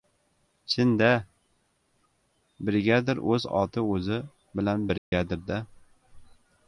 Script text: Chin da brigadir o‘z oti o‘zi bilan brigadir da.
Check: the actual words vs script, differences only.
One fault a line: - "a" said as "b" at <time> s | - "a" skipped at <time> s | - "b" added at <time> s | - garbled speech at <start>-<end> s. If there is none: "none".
none